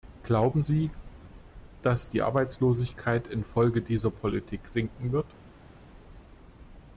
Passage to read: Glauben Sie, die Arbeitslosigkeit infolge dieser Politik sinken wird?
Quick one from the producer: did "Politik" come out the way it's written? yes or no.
yes